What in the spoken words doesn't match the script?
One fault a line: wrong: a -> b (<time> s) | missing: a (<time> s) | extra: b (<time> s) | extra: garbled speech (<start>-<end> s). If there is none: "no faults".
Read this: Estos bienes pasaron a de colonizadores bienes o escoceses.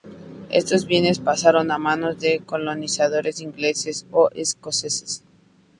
extra: manos (1.7 s)
wrong: bienes -> ingleses (3.4 s)